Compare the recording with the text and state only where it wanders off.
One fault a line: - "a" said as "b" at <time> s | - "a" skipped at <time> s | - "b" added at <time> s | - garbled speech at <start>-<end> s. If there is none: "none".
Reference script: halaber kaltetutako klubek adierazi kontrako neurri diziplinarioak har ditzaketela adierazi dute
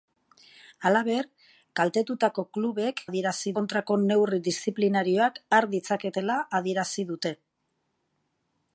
none